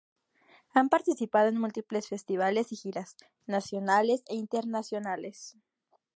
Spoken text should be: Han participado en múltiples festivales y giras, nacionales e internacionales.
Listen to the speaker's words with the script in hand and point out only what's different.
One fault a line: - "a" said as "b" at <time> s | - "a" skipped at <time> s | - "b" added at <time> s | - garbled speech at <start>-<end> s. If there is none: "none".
none